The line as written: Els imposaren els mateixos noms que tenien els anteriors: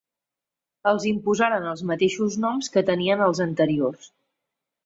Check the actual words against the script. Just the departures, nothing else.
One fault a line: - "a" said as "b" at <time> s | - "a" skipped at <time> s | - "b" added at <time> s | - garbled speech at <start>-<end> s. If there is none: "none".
none